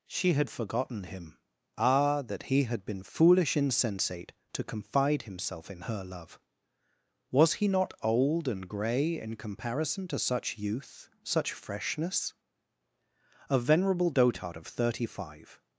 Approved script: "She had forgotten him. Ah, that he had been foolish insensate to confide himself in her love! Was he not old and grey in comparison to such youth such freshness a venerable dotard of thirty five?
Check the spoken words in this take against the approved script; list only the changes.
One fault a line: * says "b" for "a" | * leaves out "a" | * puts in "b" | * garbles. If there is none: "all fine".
all fine